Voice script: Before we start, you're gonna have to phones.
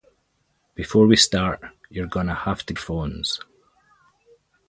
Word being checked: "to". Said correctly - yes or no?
yes